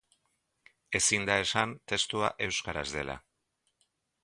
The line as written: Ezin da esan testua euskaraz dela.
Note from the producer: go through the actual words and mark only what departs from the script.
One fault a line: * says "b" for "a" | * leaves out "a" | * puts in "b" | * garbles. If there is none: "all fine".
all fine